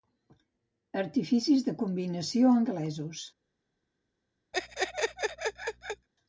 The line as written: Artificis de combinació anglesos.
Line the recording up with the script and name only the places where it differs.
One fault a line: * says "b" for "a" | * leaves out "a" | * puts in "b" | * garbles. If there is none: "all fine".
all fine